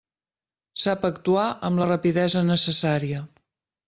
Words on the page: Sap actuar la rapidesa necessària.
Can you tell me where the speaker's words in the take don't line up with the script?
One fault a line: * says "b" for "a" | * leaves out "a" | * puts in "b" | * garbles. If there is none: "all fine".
* puts in "amb"